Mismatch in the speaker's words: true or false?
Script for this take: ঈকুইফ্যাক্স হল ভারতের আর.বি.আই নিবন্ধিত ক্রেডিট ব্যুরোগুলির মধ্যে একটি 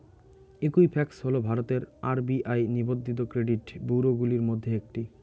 false